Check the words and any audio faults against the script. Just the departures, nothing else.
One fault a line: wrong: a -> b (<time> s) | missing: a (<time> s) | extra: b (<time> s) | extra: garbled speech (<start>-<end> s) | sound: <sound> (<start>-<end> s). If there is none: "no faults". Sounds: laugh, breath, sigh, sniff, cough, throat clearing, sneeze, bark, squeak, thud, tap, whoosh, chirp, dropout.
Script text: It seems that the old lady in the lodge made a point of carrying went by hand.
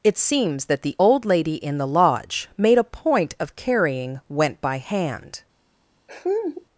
sound: laugh (6.1-6.7 s)